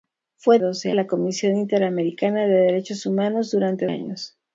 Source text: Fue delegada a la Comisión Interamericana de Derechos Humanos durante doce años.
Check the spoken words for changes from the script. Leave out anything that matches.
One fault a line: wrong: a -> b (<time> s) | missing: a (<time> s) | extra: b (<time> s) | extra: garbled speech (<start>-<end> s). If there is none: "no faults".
wrong: delegada -> doce (0.6 s)
missing: doce (3.9 s)